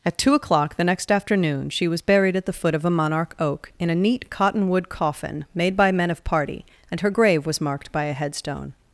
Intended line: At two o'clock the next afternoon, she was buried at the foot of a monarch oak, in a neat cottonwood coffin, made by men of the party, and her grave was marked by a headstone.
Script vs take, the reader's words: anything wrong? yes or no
yes